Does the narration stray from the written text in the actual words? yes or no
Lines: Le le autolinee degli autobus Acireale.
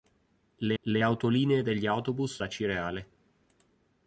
no